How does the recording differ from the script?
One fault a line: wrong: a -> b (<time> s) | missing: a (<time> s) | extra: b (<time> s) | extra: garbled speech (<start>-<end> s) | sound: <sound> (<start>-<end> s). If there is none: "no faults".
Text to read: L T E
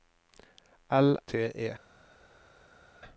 no faults